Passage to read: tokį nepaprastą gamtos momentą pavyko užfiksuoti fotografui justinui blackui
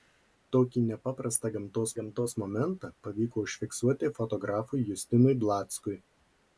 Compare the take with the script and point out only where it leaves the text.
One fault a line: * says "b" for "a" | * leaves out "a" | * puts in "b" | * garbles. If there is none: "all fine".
* puts in "gamtos"